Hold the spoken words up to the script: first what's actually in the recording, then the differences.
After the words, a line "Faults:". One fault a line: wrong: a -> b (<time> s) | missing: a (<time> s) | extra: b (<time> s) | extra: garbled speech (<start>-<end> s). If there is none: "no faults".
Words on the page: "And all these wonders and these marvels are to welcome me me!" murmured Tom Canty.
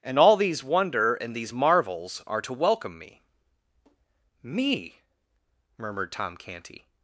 "And all these wonder and these marvels are to welcome me me!" murmured Tom Canty.
Faults:
wrong: wonders -> wonder (0.6 s)